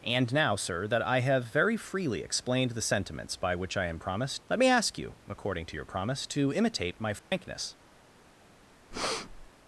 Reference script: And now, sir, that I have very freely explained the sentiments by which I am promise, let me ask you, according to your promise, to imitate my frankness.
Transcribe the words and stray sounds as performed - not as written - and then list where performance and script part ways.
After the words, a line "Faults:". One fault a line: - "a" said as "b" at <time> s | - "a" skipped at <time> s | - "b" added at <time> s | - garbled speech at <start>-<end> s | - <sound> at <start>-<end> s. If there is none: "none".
And now, sir, that I have very freely explained the sentiments by which I am promise, let me ask you, according to your promise, to imitate my frankness.
Faults:
- dropout at 7.2-7.3 s
- breath at 8.9-9.5 s